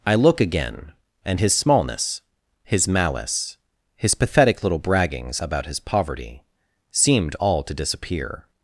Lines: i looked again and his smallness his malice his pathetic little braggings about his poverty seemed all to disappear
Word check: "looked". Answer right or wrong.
wrong